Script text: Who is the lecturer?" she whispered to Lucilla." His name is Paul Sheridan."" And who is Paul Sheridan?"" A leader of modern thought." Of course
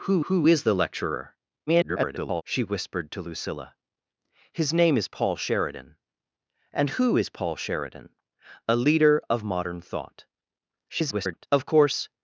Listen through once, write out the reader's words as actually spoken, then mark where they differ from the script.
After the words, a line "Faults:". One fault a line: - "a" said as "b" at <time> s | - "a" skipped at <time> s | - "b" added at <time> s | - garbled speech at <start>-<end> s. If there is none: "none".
Who who is the lecturer?" [garbled] she whispered to Lucilla." His name is Paul Sheridan."" And who is Paul Sheridan?"" A leader of modern thought." [garbled] Of course
Faults:
- "who" added at 0.3 s
- garbled speech at 1.7-2.4 s
- garbled speech at 10.9-11.5 s